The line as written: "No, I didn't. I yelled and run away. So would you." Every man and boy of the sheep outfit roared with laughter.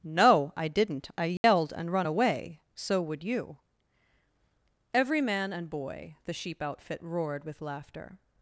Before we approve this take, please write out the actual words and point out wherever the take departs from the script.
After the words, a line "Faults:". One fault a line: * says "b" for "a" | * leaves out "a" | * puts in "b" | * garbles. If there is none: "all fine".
"No, I didn't. I yelled and run away. So would you." Every man and boy the sheep outfit roared with laughter.
Faults:
* leaves out "of"